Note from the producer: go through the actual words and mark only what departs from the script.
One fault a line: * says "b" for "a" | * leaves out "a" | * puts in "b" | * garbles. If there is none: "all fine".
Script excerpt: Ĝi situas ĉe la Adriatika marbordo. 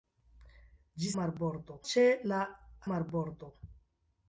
* says "marbordo" for "situas"
* leaves out "Adriatika"